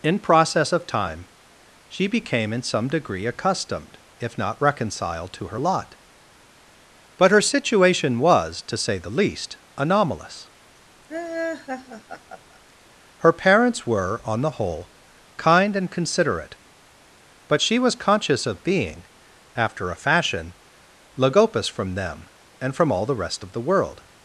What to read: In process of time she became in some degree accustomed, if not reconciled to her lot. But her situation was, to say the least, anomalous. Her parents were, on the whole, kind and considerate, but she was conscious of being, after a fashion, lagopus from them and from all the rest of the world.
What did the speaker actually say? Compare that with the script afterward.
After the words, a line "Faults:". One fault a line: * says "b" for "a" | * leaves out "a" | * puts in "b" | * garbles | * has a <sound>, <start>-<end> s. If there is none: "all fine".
In process of time she became in some degree accustomed, if not reconciled to her lot. But her situation was, to say the least, anomalous. Her parents were, on the whole, kind and considerate, but she was conscious of being, after a fashion, lagopus from them and from all the rest of the world.
Faults:
* has a laugh, 11.1-12.6 s